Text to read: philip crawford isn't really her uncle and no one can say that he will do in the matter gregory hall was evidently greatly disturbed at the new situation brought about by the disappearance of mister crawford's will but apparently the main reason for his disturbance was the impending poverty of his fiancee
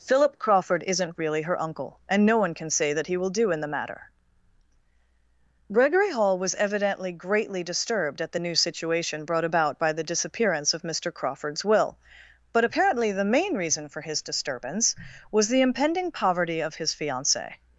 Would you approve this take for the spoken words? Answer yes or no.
yes